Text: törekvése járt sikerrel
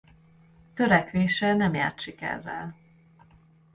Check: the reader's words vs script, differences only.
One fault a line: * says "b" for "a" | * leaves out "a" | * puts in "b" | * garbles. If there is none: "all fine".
* puts in "nem"